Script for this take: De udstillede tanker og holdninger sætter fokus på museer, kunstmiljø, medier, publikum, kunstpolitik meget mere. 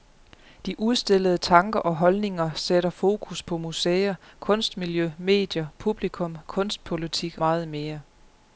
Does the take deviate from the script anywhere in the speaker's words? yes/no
no